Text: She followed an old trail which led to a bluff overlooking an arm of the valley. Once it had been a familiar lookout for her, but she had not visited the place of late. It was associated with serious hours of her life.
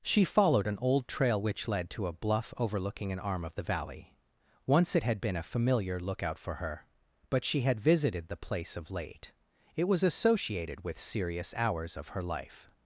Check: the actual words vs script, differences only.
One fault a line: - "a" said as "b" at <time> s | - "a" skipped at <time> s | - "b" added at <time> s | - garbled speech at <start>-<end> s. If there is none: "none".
- "not" skipped at 7.8 s